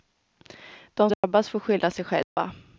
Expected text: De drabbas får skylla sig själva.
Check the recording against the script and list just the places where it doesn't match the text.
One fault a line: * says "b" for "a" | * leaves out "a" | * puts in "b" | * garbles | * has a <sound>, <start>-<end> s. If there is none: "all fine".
* has a dropout, 1.1-1.2 s
* has a dropout, 2.2-2.4 s